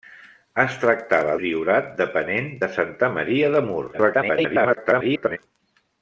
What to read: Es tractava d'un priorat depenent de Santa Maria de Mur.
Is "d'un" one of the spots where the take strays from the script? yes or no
yes